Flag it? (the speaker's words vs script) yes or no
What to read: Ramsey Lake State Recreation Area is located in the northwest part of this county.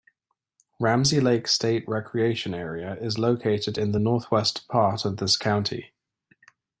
no